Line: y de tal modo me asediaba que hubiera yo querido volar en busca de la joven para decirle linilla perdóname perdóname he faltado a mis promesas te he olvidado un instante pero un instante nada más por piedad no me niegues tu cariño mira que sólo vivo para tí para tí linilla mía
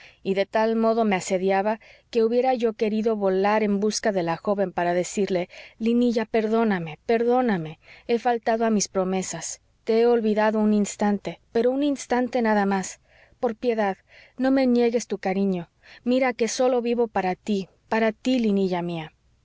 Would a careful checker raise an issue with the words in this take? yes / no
no